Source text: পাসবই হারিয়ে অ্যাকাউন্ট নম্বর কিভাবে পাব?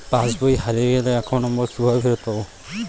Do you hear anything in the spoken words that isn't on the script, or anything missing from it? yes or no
yes